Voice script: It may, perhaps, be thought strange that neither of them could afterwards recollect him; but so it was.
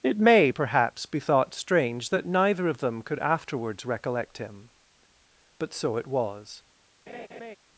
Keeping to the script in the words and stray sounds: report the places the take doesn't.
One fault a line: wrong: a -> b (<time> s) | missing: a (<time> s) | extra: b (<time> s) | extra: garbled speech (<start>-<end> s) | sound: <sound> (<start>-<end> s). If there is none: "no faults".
sound: laugh (7.1-7.6 s)